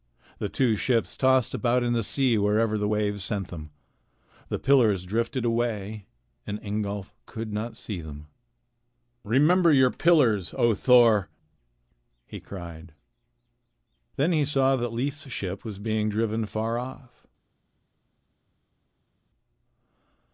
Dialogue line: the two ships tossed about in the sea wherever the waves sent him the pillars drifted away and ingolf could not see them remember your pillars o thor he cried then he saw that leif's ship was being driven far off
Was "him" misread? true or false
true